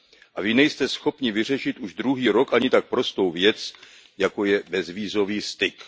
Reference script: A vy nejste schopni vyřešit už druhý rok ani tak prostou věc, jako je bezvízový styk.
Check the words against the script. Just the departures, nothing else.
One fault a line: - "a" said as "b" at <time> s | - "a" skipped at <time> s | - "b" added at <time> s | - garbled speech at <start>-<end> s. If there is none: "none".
none